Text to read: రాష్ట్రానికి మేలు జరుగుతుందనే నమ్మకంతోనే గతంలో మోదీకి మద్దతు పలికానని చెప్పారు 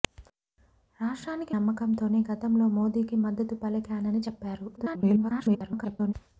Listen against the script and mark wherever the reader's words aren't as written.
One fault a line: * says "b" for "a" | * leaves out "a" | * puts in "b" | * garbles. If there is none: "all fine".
* leaves out "మేలు జరుగుతుందనే"
* garbles